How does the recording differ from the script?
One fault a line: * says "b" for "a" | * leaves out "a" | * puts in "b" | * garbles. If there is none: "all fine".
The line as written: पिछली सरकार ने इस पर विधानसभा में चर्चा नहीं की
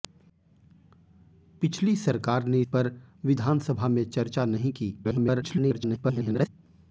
* leaves out "इस"
* garbles